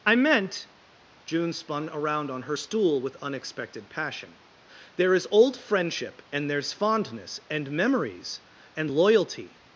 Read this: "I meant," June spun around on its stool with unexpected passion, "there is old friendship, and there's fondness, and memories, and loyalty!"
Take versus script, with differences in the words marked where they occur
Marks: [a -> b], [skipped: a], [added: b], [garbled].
"I meant," June spun around on [its -> her] stool with unexpected passion, "there is old friendship, and there's fondness, and memories, and loyalty!"